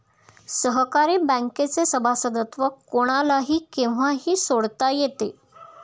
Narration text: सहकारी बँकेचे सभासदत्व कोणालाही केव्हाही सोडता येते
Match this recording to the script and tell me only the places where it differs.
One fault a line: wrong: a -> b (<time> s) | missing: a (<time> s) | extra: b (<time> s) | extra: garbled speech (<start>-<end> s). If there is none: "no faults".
no faults